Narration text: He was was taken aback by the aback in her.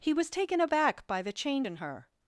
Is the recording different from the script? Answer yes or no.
yes